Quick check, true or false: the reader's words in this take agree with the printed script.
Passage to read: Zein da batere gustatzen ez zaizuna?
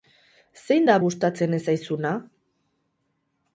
false